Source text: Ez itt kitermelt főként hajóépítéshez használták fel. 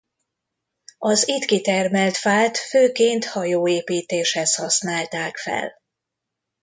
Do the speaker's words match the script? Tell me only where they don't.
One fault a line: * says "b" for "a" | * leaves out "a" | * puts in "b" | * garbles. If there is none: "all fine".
* says "Az" for "Ez"
* puts in "fát"